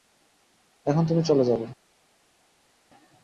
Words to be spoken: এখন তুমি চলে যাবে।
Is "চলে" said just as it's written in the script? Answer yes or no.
yes